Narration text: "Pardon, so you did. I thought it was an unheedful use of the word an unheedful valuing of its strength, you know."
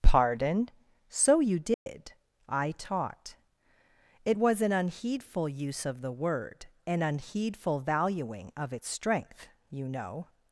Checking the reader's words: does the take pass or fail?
fail